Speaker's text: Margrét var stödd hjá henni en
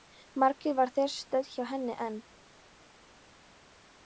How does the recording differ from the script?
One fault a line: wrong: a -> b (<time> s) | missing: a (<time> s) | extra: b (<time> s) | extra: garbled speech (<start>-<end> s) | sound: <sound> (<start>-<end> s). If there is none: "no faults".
extra: þar (0.9 s)